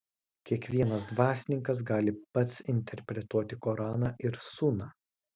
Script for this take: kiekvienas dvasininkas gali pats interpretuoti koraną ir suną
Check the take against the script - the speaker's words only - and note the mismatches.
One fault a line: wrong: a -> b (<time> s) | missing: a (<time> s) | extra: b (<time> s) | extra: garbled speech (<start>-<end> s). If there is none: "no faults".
no faults